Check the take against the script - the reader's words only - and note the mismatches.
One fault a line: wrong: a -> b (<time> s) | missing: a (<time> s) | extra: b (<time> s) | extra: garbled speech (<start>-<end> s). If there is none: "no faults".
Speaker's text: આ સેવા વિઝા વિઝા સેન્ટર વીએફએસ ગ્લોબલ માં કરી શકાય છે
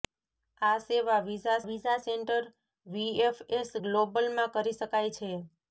no faults